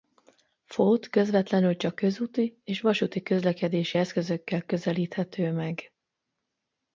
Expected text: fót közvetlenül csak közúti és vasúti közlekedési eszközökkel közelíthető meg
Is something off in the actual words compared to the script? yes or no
no